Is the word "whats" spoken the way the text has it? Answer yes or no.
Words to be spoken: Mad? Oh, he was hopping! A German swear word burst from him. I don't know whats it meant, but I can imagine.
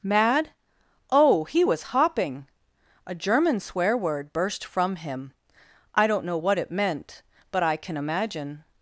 no